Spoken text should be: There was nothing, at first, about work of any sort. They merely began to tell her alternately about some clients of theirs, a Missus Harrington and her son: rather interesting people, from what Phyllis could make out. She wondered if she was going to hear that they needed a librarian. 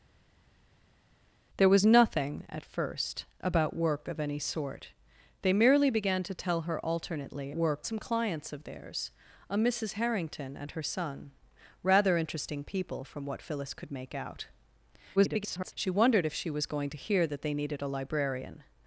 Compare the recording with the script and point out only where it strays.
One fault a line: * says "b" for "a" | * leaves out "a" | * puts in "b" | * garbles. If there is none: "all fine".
* says "work" for "about"
* garbles